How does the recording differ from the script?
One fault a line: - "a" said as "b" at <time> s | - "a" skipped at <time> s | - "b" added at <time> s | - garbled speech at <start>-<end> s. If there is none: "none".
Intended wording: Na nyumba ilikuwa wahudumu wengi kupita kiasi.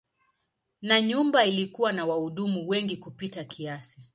- "na" added at 1.9 s